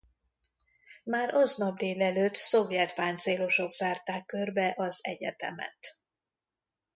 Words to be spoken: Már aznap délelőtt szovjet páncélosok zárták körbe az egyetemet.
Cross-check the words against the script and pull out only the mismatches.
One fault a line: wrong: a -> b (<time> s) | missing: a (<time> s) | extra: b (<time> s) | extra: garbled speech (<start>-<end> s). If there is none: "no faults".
no faults